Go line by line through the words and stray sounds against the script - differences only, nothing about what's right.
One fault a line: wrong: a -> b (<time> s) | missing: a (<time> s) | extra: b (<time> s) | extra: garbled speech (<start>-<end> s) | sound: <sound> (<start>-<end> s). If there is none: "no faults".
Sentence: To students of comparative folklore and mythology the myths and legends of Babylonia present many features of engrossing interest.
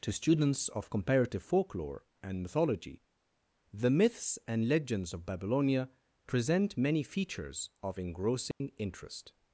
sound: dropout (8.5-8.6 s)